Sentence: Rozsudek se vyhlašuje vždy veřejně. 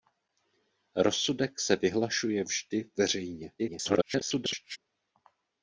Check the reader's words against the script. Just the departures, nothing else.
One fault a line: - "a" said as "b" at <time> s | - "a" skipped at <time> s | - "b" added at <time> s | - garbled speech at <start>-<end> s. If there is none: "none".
- garbled speech at 3.6-4.8 s